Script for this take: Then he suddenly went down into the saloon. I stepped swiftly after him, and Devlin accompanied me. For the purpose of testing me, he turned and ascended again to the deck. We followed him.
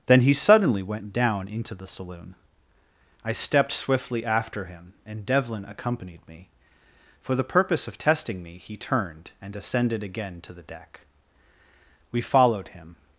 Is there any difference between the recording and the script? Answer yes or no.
no